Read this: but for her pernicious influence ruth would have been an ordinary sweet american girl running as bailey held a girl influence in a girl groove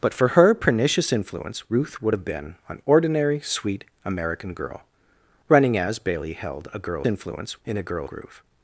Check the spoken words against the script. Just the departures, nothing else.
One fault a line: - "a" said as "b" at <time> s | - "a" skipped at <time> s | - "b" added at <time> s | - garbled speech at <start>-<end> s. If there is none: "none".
none